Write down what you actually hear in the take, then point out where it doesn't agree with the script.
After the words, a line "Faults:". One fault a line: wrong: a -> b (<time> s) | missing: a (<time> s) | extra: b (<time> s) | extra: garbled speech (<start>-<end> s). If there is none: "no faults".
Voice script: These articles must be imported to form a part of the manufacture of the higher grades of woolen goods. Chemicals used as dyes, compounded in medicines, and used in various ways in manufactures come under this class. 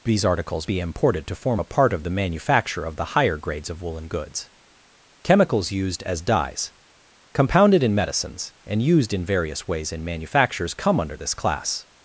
These articles be imported to form a part of the manufacture of the higher grades of woolen goods. Chemicals used as dyes, compounded in medicines, and used in various ways in manufactures come under this class.
Faults:
missing: must (0.7 s)